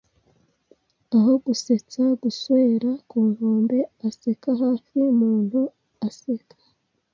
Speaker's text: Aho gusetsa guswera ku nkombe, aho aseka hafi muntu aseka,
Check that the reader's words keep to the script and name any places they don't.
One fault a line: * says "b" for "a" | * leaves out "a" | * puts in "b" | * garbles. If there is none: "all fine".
* leaves out "aho"